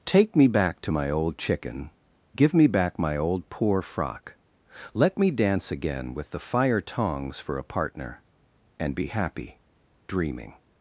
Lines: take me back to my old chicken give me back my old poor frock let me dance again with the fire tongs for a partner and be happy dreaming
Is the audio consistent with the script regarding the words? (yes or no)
yes